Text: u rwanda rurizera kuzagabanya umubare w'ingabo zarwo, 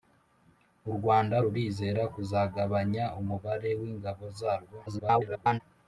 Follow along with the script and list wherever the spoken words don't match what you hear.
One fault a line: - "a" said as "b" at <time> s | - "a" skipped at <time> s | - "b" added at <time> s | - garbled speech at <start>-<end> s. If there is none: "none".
- garbled speech at 4.9-5.6 s